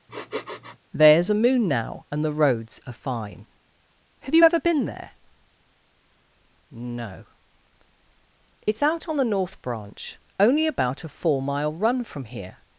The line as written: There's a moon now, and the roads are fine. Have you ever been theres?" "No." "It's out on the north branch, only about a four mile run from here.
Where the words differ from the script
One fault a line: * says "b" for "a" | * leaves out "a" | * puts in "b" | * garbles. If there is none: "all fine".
* says "there" for "theres"